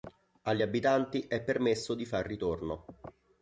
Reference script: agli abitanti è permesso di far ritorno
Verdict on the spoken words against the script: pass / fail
pass